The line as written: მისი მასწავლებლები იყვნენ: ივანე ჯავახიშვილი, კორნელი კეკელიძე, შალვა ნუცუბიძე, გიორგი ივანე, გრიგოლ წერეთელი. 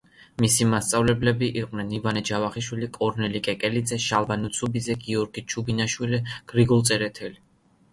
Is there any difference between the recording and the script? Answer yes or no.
yes